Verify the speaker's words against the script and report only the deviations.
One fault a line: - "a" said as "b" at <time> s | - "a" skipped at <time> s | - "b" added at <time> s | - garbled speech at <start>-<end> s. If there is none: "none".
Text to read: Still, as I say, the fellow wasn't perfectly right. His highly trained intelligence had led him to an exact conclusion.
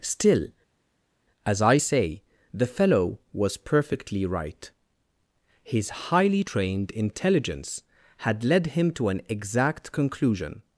- "wasn't" said as "was" at 3.3 s